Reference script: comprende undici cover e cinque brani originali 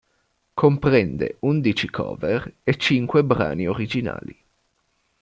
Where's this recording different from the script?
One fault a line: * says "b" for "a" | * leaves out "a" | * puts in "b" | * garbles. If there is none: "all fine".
all fine